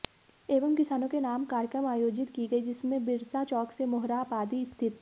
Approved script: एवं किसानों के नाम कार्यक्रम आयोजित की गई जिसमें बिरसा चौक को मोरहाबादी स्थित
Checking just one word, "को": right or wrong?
wrong